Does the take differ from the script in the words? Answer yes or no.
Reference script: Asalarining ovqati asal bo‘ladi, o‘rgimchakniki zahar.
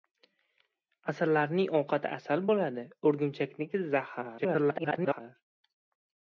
yes